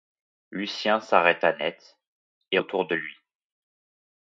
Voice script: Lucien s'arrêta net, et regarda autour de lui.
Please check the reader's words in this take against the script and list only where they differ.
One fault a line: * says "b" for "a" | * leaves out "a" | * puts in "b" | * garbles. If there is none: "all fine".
* leaves out "regarda"